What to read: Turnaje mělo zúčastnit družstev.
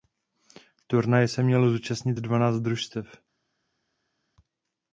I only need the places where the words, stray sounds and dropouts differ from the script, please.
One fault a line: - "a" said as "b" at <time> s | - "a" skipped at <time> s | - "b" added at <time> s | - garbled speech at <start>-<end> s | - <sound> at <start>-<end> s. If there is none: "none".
- "se" added at 1.3 s
- "dvanáct" added at 2.1 s